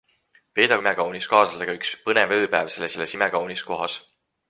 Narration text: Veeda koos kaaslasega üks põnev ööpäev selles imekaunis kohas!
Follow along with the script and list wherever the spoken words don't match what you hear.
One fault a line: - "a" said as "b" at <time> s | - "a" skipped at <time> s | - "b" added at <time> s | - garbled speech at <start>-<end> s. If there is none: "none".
- "koos" said as "imekaunis" at 0.8 s
- "selles" added at 2.9 s